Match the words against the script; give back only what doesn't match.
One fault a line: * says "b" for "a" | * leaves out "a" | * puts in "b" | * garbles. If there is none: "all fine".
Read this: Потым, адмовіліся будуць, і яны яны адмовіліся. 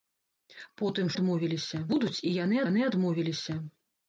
all fine